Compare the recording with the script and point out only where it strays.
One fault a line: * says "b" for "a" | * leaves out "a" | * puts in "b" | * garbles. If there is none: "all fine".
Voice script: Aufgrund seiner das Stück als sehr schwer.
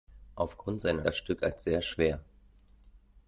all fine